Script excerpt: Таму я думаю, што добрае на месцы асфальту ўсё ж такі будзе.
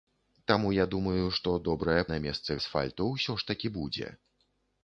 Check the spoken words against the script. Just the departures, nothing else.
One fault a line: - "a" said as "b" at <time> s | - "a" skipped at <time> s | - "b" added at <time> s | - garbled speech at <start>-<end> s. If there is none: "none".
none